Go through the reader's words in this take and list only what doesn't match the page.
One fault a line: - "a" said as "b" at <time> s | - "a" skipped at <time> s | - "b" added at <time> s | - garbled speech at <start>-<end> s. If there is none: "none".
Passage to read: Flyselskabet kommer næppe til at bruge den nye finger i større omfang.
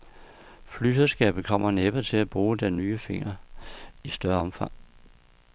none